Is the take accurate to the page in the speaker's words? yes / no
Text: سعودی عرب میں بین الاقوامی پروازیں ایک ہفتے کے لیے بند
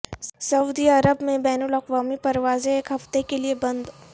yes